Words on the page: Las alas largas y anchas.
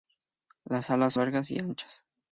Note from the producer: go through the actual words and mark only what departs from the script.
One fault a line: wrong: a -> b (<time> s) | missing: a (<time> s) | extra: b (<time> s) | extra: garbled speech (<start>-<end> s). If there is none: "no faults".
no faults